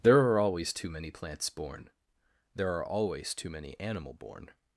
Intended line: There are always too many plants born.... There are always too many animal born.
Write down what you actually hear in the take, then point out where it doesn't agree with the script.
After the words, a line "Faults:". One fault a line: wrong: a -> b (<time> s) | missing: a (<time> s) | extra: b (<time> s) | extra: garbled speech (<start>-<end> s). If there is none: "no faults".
There are always too many plants born.... There are always too many animal born.
Faults:
no faults